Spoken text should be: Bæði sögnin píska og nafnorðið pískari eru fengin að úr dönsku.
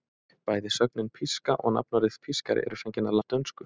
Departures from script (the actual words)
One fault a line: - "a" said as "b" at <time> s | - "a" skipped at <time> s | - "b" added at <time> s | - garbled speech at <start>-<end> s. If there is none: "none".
none